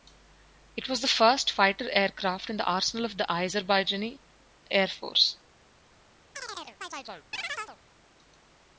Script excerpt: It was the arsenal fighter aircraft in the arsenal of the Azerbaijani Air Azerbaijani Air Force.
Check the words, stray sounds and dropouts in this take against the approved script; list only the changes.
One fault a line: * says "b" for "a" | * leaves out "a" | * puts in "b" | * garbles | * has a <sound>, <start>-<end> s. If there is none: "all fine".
* says "first" for "arsenal"
* leaves out "Azerbaijani Air"
* has a chirp, 6.4-7.8 s